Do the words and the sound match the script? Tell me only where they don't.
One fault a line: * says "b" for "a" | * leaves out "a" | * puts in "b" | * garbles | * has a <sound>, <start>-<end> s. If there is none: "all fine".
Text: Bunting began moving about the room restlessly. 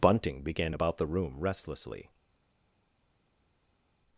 * leaves out "moving"